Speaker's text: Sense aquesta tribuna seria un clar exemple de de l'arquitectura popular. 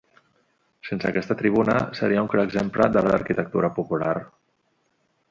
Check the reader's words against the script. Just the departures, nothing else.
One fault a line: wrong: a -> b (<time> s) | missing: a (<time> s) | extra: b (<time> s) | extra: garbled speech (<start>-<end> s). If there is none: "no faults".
no faults